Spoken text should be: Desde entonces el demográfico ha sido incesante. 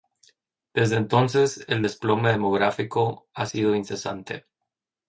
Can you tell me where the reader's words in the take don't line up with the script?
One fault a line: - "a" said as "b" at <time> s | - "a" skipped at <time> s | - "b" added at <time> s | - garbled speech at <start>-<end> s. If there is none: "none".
- "desplome" added at 1.8 s